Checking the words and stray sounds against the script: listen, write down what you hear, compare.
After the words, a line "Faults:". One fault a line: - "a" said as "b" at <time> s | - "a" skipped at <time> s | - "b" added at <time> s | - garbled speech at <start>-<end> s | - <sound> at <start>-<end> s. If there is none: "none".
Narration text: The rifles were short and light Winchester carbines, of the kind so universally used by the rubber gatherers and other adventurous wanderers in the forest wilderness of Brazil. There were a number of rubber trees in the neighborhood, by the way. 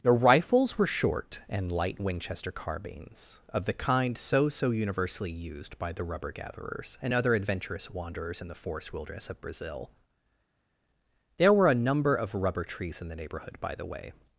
The rifles were short and light Winchester carbines, of the kind so so universally used by the rubber gatherers and other adventurous wanderers in the forest wilderness of Brazil. There were a number of rubber trees in the neighborhood, by the way.
Faults:
- "so" added at 4.5 s